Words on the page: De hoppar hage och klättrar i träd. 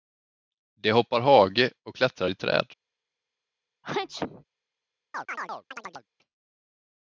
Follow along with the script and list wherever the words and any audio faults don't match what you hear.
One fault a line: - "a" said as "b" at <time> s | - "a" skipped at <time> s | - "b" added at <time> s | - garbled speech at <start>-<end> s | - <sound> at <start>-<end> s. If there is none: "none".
- sneeze at 3.8-4.4 s
- chirp at 5.1-6.1 s